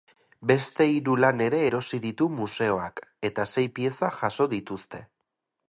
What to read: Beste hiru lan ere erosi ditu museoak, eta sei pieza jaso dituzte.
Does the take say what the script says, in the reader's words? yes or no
yes